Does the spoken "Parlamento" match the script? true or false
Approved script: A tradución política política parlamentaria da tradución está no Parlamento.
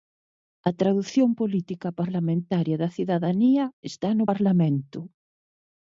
true